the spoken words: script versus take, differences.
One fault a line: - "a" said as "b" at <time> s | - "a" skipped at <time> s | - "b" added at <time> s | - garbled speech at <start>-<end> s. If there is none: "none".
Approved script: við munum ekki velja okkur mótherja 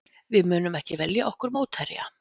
none